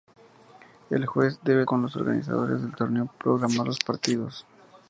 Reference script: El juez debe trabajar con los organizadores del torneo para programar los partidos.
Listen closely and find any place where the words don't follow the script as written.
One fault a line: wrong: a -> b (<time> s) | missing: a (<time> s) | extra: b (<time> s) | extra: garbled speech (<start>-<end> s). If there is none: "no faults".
missing: trabajar (1.7 s)
missing: para (3.1 s)